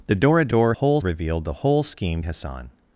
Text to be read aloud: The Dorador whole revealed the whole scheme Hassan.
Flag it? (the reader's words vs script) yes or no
no